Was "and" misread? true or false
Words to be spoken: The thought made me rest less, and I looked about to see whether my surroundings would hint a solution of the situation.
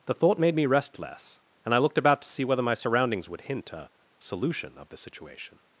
false